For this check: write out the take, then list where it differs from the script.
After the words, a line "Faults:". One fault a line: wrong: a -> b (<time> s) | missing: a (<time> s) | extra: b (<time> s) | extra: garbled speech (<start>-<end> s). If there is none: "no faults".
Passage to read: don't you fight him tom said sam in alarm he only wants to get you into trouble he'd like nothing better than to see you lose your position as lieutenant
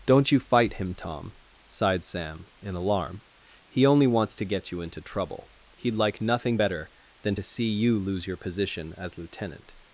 don't you fight him tom sighed sam in alarm he only wants to get you into trouble he'd like nothing better than to see you lose your position as lieutenant
Faults:
wrong: said -> sighed (1.7 s)